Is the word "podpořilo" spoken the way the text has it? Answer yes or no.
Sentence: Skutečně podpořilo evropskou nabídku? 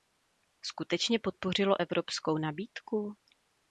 yes